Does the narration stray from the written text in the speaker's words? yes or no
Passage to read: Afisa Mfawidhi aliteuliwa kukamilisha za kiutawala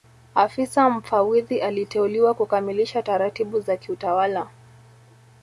yes